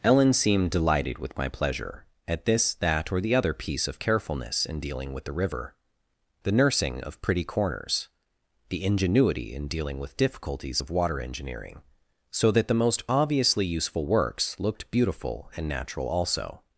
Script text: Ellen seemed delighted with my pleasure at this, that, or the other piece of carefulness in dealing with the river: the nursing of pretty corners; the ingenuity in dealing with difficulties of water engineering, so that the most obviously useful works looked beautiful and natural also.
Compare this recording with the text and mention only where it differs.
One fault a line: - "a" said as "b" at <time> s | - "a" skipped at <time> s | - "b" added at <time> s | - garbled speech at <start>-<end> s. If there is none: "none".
none